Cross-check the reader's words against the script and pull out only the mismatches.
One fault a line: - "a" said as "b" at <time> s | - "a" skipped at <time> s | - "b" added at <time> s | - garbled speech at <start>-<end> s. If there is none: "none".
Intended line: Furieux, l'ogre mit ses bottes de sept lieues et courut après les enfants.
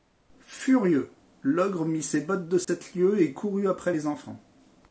none